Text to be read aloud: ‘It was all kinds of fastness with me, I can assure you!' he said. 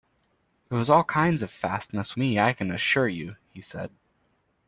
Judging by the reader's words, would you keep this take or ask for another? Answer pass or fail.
fail